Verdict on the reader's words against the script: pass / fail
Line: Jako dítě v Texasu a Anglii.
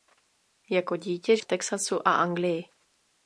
pass